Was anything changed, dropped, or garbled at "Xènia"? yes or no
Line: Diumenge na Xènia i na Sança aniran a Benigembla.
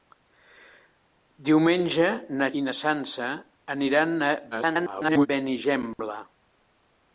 yes